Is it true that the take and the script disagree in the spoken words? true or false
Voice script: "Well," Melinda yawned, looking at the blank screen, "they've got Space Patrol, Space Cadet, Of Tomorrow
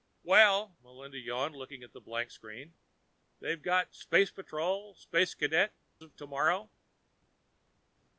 false